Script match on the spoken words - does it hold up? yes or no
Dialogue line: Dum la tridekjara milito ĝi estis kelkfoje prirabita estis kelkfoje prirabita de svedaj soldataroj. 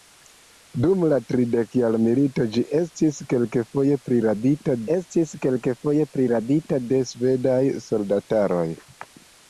yes